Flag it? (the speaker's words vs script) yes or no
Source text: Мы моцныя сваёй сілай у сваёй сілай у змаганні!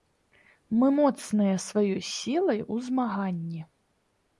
yes